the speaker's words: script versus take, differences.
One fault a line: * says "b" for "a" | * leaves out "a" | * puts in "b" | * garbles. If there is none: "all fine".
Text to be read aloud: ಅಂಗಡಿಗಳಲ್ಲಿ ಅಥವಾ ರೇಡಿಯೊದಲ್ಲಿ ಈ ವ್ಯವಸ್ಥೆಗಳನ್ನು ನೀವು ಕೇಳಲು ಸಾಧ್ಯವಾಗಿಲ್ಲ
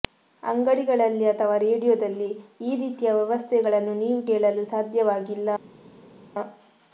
* puts in "ರೀತಿಯ"